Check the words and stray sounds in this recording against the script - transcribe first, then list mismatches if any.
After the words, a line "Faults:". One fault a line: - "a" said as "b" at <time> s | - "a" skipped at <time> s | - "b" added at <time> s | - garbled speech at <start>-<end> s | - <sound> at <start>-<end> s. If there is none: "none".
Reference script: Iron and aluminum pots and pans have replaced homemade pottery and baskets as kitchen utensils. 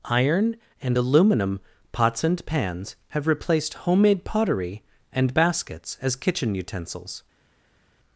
Iron and aluminum pots and pans have replaced homemade pottery and baskets as kitchen utensils.
Faults:
none